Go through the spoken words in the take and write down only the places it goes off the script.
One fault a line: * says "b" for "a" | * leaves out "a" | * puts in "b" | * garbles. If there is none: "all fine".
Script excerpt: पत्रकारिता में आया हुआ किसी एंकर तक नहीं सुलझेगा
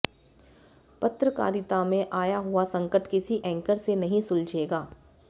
* puts in "संकट"
* says "से" for "तक"